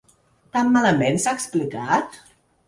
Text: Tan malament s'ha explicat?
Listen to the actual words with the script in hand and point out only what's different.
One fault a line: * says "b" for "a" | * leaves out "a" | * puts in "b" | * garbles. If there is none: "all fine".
all fine